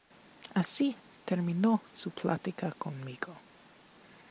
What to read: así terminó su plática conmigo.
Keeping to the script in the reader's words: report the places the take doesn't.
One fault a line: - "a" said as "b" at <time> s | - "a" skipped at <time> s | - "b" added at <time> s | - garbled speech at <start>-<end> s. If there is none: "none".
none